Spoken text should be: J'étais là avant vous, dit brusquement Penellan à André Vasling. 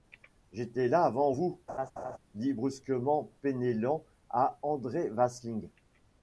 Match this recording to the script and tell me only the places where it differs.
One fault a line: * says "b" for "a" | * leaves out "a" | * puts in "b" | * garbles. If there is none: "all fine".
all fine